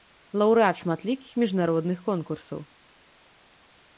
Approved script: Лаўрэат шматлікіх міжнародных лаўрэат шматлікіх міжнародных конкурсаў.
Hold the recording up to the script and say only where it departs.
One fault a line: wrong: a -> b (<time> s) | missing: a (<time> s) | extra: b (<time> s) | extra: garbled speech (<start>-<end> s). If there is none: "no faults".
missing: лаўрэат шматлікіх міжнародных (2.0 s)